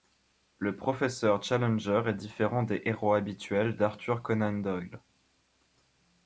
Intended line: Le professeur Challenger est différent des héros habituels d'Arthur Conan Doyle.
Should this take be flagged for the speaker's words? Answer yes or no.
no